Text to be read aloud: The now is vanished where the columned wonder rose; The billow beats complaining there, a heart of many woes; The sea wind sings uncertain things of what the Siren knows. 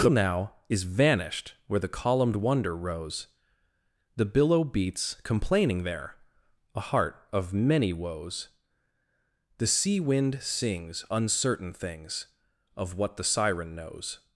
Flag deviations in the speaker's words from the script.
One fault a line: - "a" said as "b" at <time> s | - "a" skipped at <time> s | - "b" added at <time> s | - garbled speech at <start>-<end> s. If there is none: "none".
none